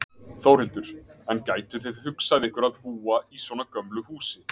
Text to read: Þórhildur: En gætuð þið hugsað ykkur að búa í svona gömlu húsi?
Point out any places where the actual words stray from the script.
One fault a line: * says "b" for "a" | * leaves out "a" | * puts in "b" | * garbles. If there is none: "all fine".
all fine